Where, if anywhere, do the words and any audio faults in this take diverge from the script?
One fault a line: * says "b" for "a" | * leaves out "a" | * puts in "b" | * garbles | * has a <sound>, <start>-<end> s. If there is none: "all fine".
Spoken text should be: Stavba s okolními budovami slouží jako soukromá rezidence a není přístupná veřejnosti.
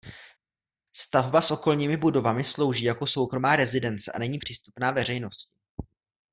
all fine